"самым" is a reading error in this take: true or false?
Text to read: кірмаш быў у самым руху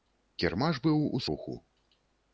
true